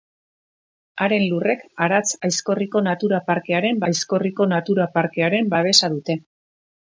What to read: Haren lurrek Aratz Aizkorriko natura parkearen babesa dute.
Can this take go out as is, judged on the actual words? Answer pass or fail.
fail